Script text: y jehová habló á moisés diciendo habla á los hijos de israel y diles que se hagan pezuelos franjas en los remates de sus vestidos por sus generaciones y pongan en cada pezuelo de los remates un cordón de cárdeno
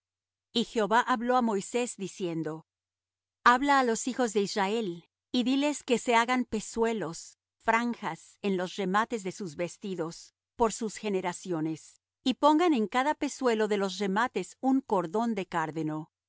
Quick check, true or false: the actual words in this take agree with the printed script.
true